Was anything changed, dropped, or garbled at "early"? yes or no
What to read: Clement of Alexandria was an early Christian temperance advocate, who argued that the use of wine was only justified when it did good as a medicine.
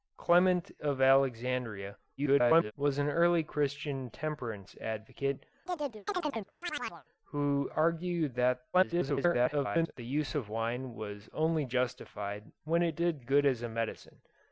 no